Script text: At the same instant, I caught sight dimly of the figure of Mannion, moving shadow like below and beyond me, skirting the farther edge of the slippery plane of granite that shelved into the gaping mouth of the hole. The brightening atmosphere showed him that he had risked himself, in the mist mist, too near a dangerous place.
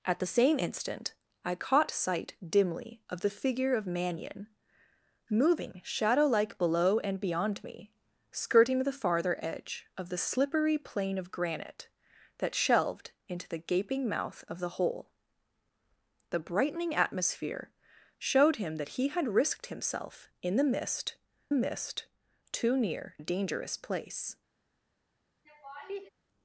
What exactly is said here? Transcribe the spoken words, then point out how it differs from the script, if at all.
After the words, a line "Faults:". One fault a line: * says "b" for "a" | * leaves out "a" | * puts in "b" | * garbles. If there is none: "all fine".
At the same instant, I caught sight dimly of the figure of Mannion, moving shadow like below and beyond me, skirting the farther edge of the slippery plane of granite that shelved into the gaping mouth of the hole. The brightening atmosphere showed him that he had risked himself, in the mist mist, too near a dangerous place.
Faults:
all fine